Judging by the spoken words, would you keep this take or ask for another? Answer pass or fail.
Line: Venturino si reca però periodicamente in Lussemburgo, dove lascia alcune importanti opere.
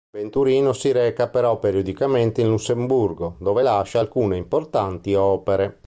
pass